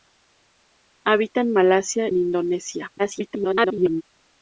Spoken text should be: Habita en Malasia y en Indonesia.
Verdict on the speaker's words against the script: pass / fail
fail